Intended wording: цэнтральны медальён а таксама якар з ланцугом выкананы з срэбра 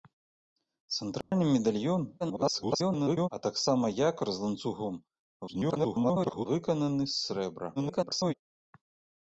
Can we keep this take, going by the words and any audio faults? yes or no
no